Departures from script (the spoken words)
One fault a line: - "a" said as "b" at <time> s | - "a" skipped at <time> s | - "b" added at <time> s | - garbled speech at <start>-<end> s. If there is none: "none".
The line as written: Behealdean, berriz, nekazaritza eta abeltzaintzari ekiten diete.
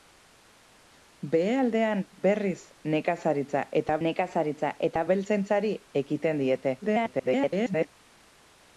- "nekazaritza eta" added at 4.1 s
- garbled speech at 6.8-7.9 s